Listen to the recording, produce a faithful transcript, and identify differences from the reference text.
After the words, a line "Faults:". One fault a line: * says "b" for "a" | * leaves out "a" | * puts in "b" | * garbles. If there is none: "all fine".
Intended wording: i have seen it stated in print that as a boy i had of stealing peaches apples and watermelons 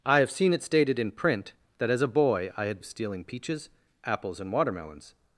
i have seen it stated in print that as a boy i had of stealing peaches apples and watermelons
Faults:
all fine